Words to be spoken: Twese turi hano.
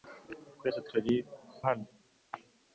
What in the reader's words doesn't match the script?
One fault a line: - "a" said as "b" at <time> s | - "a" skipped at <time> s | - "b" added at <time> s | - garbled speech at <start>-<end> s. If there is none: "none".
none